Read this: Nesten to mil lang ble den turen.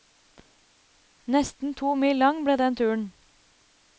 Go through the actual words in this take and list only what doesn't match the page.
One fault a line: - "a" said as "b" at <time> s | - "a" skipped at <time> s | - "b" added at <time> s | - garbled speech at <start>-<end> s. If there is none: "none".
none